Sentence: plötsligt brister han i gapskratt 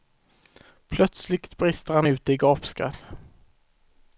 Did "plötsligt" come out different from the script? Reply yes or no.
no